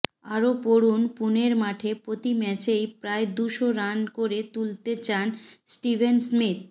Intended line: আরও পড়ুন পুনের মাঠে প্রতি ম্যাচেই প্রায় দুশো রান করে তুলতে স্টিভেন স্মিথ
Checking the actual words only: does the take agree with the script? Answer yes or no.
no